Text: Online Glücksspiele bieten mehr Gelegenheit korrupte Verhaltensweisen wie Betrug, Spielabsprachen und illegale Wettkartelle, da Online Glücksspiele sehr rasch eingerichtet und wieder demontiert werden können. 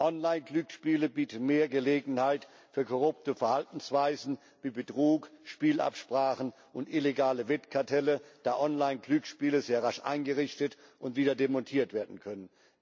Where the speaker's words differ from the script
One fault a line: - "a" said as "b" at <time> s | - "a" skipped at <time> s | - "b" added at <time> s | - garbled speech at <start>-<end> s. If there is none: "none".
- "für" added at 2.7 s